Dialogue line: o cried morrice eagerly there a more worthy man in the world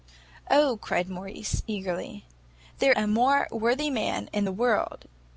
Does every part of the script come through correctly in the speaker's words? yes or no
yes